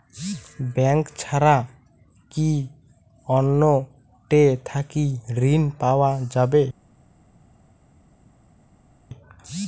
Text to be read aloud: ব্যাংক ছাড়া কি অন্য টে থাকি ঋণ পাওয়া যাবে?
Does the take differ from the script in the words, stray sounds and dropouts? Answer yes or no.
no